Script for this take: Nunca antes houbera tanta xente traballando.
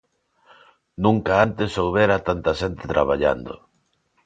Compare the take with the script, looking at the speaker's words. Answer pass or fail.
pass